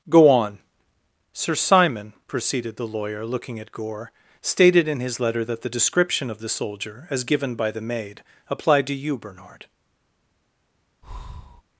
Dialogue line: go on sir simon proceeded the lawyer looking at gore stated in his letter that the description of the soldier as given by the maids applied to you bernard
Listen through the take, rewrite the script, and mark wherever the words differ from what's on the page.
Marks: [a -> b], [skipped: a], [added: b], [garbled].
go on sir simon proceeded the lawyer looking at gore stated in his letter that the description of the soldier as given by the [maids -> maid] applied to you bernard